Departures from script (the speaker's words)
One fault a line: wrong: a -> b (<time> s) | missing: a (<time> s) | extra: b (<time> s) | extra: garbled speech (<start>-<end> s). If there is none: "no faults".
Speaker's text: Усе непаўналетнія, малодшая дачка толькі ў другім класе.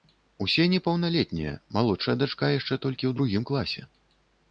extra: яшчэ (2.5 s)